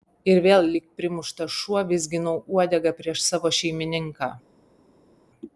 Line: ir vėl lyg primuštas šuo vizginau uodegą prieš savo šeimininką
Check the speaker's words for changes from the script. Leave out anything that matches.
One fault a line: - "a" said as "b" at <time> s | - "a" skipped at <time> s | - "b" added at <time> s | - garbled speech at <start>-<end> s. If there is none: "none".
none